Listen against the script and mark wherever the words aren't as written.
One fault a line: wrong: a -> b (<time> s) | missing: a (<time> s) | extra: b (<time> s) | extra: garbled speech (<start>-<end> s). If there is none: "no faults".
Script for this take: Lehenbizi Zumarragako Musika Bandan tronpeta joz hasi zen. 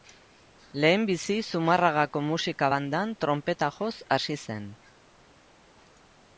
no faults